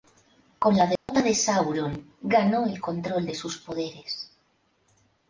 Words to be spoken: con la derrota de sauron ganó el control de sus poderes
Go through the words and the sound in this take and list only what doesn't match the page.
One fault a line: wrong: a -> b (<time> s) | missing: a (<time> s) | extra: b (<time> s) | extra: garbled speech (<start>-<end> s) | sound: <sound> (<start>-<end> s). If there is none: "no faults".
sound: dropout (1.0-1.1 s)